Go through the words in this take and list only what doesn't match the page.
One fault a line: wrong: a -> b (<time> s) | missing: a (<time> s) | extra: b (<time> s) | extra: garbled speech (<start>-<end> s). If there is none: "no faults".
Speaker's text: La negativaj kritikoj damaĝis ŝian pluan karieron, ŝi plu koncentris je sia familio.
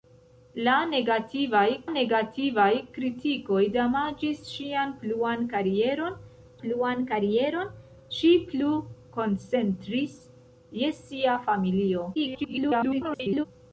extra: negativaj (1.9 s)
extra: pluan karieron (6.6 s)
extra: garbled speech (12.1-13.5 s)